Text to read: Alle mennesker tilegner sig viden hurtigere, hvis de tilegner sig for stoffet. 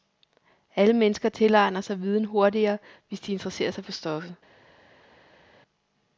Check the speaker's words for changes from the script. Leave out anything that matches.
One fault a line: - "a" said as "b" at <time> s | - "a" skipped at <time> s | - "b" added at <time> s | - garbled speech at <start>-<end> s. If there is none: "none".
- "tilegner" said as "interesserer" at 3.3 s